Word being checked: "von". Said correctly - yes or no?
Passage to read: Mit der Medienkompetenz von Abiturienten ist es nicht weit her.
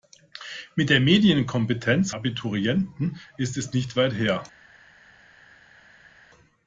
no